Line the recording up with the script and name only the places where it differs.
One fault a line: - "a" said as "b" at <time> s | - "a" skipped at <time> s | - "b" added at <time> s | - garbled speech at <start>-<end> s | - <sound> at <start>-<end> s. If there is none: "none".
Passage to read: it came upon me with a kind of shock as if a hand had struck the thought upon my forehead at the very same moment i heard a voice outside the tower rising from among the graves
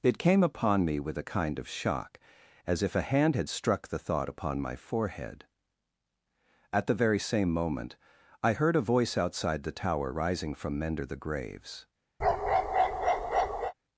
- "among" said as "mender" at 10.8 s
- bark at 12.2-13.7 s